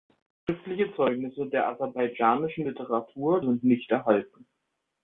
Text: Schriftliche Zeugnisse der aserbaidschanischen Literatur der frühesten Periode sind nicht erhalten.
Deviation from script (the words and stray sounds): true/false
true